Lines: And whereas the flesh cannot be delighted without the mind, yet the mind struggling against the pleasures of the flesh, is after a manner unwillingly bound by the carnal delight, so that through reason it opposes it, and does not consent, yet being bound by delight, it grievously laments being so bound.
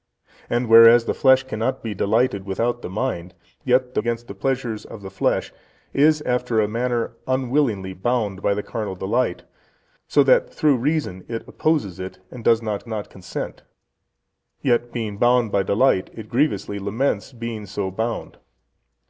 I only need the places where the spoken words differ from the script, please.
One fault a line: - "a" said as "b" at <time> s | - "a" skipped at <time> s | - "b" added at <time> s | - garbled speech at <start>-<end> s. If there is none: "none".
- "mind struggling" skipped at 4.0 s
- "not" added at 12.9 s